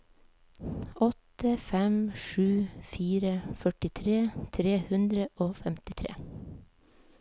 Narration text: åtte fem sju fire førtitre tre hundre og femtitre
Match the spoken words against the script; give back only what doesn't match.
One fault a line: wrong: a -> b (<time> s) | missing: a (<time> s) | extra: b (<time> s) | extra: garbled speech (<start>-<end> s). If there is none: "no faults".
no faults